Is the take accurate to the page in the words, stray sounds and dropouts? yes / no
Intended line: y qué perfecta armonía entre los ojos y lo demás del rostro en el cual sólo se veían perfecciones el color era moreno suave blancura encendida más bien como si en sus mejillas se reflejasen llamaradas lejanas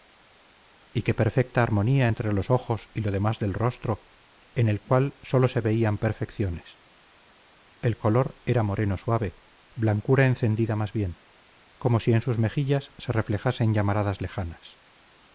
yes